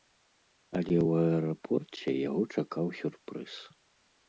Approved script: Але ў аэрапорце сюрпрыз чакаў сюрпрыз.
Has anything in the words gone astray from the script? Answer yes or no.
yes